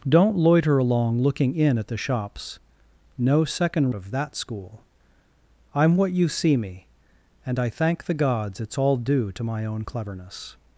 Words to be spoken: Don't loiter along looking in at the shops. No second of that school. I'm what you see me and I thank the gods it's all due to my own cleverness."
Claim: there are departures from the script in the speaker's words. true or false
false